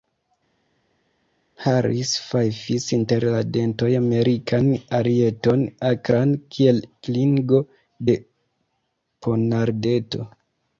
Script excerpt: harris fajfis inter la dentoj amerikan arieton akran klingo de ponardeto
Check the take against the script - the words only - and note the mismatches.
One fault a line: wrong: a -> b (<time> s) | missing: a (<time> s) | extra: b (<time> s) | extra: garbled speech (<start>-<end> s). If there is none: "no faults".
extra: kiel (6.6 s)